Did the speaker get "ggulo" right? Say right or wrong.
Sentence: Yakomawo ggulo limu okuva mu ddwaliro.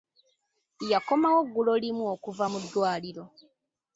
right